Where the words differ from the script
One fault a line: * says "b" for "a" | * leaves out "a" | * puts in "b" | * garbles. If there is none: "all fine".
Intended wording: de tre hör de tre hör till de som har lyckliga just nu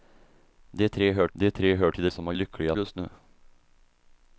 all fine